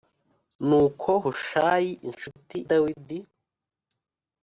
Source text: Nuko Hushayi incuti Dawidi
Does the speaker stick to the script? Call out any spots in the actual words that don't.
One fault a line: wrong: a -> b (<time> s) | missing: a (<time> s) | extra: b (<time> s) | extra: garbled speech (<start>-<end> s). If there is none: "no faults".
no faults